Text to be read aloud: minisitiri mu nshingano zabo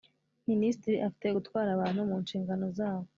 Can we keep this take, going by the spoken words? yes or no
no